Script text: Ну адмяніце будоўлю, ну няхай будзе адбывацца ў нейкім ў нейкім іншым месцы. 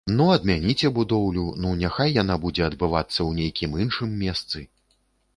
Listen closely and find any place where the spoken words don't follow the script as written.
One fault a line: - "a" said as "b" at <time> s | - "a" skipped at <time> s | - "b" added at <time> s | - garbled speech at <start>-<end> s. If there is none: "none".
- "яна" added at 2.2 s
- "ў нейкім" skipped at 3.7 s